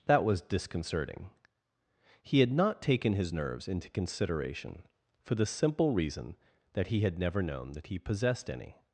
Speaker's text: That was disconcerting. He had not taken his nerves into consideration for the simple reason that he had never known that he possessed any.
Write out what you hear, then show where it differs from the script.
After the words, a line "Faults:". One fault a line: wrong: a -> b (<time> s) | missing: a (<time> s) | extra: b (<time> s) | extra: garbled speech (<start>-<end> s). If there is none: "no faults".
That was disconcerting. He had not taken his nerves into consideration for the simple reason that he had never known that he possessed any.
Faults:
no faults